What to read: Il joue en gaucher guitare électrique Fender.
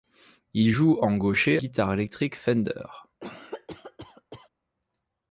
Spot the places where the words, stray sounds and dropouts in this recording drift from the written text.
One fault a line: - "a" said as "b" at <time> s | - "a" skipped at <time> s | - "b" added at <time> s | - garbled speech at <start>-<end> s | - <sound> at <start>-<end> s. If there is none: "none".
- cough at 3.2-4.5 s